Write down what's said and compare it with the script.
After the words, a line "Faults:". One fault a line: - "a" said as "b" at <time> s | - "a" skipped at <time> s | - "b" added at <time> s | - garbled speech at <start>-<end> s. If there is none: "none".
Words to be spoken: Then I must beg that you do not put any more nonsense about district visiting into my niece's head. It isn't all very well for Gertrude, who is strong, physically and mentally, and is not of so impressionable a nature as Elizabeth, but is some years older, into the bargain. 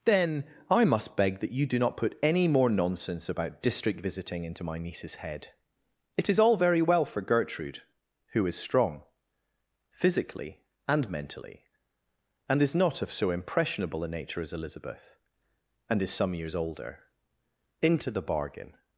Then I must beg that you do not put any more nonsense about district visiting into my niece's head. It is all very well for Gertrude, who is strong, physically and mentally, and is not of so impressionable a nature as Elizabeth, and is some years older, into the bargain.
Faults:
- "isn't" said as "is" at 6.3 s
- "but" said as "and" at 15.9 s